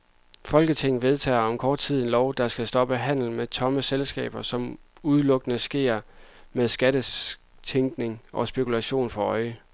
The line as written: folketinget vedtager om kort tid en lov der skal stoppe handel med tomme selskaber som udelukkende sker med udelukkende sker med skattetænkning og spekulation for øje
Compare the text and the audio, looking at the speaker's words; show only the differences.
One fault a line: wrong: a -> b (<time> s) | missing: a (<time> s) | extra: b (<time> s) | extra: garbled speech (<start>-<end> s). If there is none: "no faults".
missing: udelukkende sker med (6.7 s)